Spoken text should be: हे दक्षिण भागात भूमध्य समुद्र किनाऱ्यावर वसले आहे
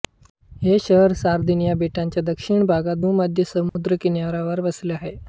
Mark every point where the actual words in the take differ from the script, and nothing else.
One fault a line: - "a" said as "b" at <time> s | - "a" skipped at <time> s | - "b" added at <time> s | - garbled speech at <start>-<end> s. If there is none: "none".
- "शहर सार्दिनिया बेटाच्या" added at 0.8 s